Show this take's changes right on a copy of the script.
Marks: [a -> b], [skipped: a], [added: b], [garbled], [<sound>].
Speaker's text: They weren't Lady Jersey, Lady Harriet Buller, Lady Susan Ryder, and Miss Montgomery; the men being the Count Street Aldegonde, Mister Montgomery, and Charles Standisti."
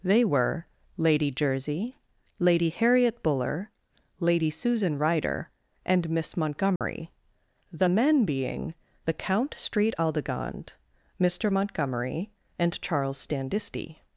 They [weren't -> were] Lady Jersey, Lady Harriet Buller, Lady Susan Ryder, and Miss Montgomery; [dropout] the men being the Count Street Aldegonde, Mister Montgomery, and Charles Standisti."